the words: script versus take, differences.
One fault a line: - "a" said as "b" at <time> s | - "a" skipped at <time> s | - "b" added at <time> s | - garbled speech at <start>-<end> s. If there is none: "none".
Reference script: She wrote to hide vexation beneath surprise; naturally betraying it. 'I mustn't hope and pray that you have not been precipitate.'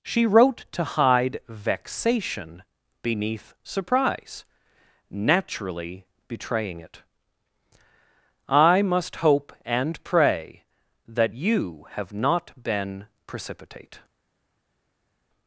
- "mustn't" said as "must" at 8.8 s